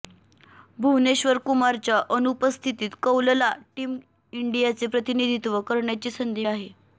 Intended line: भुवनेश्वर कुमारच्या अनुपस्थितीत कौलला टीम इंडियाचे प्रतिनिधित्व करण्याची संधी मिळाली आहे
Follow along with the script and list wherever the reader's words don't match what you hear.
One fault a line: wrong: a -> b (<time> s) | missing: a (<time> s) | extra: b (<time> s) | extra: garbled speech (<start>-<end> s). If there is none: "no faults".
missing: मिळाली (6.5 s)